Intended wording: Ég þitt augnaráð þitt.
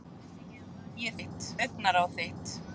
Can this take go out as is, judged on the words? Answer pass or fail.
pass